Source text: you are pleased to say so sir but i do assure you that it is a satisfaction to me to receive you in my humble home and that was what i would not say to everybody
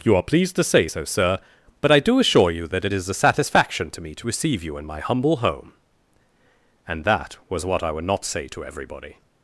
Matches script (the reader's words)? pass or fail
pass